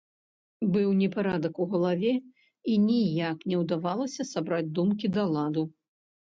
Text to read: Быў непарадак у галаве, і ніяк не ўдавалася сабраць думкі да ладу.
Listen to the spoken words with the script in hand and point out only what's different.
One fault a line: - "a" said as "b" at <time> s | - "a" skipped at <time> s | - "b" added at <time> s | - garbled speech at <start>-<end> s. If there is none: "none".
none